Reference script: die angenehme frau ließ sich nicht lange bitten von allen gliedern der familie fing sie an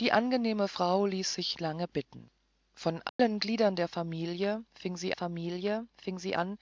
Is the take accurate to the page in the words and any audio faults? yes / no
no